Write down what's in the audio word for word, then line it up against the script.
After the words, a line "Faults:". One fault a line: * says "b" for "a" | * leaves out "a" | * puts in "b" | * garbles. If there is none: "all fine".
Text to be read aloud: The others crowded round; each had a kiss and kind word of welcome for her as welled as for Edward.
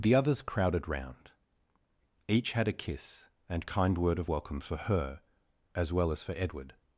The others crowded round; each had a kiss and kind word of welcome for her as well as for Edward.
Faults:
* says "well" for "welled"